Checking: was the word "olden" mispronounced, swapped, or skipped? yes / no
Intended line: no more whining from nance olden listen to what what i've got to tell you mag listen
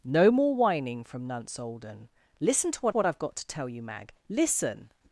no